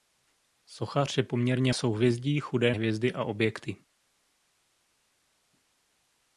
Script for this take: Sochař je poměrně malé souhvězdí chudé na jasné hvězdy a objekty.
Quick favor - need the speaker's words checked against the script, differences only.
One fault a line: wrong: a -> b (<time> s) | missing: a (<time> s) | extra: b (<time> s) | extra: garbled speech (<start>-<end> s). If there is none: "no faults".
missing: malé (1.7 s)
missing: na jasné (2.7 s)